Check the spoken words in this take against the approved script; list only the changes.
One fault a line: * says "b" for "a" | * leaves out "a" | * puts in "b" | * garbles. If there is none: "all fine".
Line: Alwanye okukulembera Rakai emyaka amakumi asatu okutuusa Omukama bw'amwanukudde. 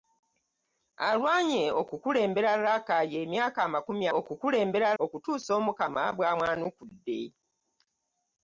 * says "okukulembera" for "asatu"